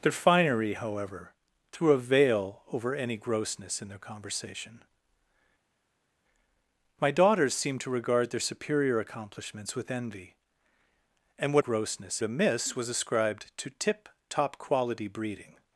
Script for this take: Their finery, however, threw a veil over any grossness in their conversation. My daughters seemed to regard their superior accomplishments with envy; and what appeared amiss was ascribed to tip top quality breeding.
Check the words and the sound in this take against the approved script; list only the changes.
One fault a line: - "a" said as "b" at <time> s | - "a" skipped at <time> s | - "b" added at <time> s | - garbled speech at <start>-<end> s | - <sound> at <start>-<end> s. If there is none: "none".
- "appeared" said as "grossness" at 11.6 s